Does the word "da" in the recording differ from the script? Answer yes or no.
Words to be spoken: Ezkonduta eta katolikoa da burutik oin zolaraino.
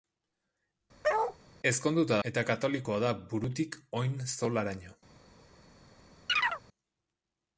no